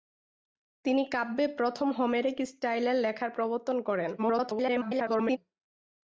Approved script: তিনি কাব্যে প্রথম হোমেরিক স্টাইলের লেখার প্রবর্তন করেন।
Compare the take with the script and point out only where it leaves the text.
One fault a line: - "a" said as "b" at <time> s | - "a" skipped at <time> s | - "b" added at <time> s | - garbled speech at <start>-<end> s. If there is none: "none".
- garbled speech at 4.2-5.4 s